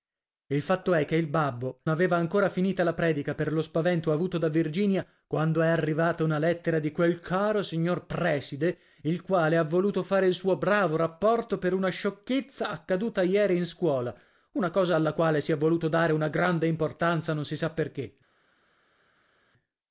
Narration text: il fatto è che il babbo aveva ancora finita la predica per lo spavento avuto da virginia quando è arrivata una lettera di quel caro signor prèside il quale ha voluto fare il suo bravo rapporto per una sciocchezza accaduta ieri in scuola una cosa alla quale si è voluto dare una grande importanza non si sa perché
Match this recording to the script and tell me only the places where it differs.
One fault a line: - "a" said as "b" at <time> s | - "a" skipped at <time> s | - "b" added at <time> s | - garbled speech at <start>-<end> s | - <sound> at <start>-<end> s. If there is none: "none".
none